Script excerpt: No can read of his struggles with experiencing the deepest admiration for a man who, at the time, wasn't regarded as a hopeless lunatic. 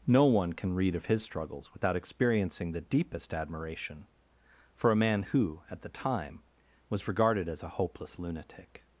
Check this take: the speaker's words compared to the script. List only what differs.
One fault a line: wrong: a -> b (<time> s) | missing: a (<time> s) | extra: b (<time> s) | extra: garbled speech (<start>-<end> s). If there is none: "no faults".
extra: one (0.2 s)
wrong: with -> without (1.7 s)
wrong: wasn't -> was (6.9 s)